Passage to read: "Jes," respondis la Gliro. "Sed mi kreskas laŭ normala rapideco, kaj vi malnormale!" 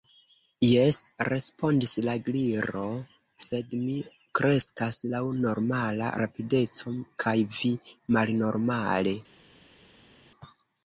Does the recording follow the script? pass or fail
pass